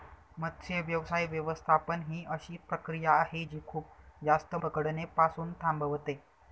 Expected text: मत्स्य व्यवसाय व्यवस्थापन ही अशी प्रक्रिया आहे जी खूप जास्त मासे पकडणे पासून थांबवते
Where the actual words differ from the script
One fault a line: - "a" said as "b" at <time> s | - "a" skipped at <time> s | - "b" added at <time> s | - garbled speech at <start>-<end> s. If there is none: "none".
- "मासे" skipped at 4.5 s